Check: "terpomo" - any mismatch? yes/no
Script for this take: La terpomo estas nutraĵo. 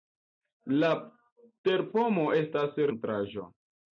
no